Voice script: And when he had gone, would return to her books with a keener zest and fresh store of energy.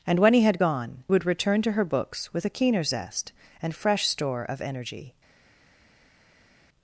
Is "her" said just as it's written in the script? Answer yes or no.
yes